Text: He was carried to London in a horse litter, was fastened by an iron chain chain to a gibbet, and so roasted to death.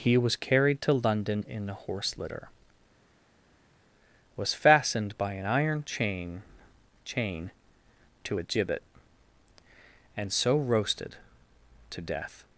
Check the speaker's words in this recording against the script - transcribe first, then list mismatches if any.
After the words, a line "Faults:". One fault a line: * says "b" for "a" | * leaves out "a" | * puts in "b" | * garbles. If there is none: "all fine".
He was carried to London in a horse litter, was fastened by an iron chain chain to a gibbet, and so roasted to death.
Faults:
all fine